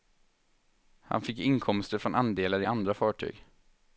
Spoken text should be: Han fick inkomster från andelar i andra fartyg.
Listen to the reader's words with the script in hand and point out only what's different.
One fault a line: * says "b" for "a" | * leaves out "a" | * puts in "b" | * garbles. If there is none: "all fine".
all fine